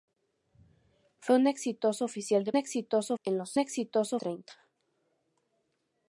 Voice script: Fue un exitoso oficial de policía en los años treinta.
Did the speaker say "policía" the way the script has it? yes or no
no